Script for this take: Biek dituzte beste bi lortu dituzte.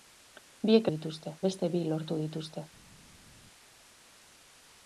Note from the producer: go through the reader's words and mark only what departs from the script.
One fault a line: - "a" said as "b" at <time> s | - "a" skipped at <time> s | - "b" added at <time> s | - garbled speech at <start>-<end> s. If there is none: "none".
none